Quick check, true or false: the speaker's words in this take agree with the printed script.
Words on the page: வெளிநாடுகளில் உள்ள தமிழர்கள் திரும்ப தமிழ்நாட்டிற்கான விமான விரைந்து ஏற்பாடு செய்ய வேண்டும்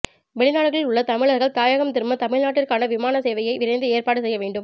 false